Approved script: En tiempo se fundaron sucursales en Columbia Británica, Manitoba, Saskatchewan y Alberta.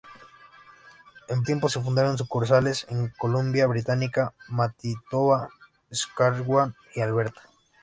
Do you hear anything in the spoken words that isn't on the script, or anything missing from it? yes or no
no